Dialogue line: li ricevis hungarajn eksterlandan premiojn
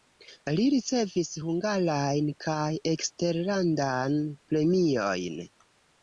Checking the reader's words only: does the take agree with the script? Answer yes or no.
no